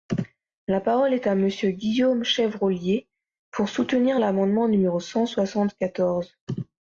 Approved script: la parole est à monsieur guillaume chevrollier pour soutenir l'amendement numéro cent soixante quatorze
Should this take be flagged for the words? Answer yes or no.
no